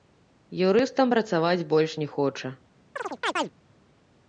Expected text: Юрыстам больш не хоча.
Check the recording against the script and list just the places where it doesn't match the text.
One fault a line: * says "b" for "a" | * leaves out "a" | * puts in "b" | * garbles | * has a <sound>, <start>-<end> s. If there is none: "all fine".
* puts in "працаваць"
* has a chirp, 3.0-3.5 s